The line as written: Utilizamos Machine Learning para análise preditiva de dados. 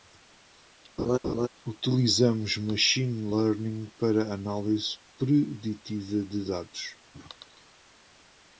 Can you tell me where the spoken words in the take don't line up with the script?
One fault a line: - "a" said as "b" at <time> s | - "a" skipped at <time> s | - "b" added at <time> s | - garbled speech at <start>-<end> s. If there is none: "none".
none